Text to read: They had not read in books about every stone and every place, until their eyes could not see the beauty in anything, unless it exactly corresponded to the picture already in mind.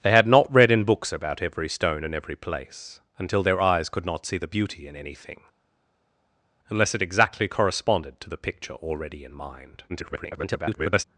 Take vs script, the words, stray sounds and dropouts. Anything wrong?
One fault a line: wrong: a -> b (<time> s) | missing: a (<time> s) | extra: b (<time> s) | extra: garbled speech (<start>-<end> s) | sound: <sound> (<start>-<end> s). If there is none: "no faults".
extra: garbled speech (9.9-11.0 s)